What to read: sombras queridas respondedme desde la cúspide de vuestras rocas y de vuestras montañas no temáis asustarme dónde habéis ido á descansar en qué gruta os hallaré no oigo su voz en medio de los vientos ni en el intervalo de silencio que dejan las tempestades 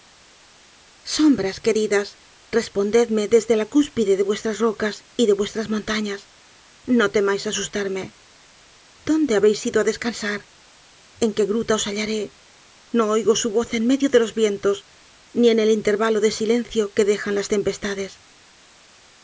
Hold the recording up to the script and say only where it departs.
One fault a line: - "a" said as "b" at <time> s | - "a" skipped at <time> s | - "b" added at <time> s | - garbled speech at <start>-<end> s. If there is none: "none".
none